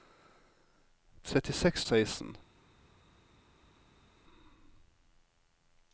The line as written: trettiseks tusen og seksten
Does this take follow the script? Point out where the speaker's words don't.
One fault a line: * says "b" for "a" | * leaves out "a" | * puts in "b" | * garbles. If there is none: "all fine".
* leaves out "tusen og"